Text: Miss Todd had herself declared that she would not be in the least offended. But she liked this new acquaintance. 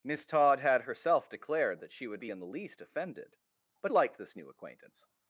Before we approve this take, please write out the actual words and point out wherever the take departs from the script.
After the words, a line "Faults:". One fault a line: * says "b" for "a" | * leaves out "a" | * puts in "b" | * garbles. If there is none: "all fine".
Miss Todd had herself declared that she would be in the least offended. But liked this new acquaintance.
Faults:
* leaves out "not"
* leaves out "she"